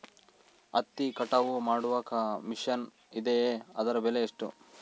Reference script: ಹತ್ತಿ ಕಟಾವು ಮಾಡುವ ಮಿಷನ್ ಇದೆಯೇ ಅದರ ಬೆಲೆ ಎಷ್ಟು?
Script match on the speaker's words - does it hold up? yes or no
yes